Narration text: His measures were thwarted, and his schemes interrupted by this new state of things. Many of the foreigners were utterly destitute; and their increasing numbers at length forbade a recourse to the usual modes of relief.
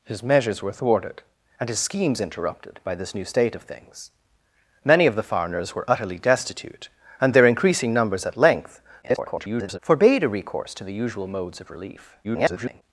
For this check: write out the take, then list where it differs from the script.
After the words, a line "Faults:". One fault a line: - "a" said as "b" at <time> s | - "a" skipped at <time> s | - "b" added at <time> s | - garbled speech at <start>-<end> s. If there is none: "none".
His measures were thwarted, and his schemes interrupted by this new state of things. Many of the foreigners were utterly destitute; and their increasing numbers at length [garbled] forbade a recourse to the usual modes of relief. [garbled]
Faults:
- garbled speech at 9.0-9.8 s
- garbled speech at 12.2-12.8 s